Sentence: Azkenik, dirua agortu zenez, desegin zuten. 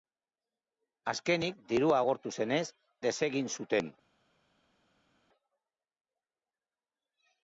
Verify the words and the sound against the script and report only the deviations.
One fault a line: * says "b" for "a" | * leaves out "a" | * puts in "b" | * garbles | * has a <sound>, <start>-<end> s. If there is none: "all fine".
all fine